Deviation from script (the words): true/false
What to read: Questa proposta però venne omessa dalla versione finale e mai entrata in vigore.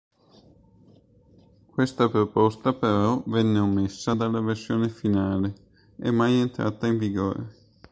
false